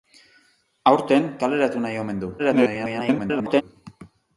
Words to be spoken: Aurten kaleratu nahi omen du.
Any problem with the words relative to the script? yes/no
yes